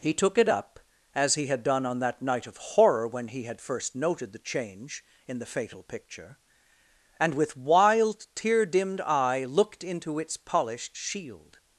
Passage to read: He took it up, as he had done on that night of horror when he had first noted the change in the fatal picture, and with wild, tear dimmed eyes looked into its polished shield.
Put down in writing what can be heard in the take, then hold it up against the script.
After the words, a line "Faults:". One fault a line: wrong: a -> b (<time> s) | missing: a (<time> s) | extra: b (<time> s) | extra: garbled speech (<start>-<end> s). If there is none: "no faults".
He took it up, as he had done on that night of horror when he had first noted the change in the fatal picture, and with wild, tear dimmed eye looked into its polished shield.
Faults:
wrong: eyes -> eye (9.0 s)